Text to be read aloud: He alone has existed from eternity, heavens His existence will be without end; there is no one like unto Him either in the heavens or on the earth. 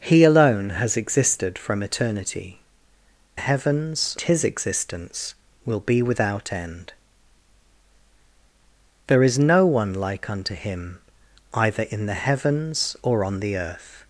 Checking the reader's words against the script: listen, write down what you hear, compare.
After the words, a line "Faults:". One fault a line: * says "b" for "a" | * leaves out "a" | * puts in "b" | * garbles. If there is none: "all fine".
He alone has existed from eternity, heavens His existence will be without end; there is no one like unto Him either in the heavens or on the earth.
Faults:
all fine